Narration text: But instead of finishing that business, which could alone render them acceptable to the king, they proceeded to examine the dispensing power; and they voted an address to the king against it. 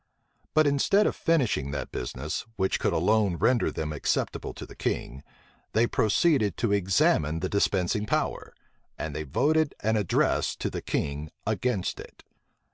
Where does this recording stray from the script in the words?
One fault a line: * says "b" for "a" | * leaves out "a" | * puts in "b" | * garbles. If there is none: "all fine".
all fine